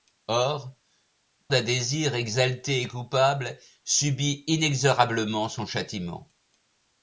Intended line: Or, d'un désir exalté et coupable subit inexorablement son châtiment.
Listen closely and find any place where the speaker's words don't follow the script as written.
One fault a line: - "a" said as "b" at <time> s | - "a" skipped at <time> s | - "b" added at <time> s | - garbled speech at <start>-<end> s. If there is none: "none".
none